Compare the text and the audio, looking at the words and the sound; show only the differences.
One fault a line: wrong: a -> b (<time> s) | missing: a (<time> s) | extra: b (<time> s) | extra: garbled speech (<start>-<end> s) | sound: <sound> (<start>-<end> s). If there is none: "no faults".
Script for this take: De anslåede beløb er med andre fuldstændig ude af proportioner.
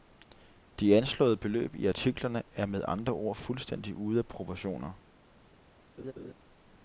extra: i artiklerne (1.8 s)
extra: ord (3.1 s)
sound: laugh (6.0-6.3 s)